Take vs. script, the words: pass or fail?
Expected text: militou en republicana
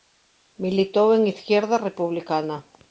fail